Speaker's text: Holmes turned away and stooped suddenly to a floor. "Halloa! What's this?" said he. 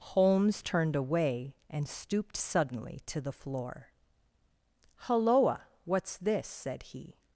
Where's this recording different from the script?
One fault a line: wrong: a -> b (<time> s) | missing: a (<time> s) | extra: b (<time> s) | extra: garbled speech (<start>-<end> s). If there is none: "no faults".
wrong: a -> the (3.2 s)